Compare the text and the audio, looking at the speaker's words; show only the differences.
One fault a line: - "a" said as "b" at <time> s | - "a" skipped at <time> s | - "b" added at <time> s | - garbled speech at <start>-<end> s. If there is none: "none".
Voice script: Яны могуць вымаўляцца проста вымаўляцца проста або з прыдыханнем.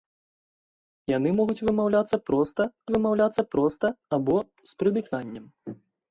none